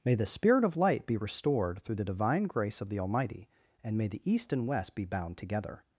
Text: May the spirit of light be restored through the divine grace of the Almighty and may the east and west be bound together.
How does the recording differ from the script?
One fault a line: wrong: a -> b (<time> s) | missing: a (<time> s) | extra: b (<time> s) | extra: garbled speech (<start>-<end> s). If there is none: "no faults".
no faults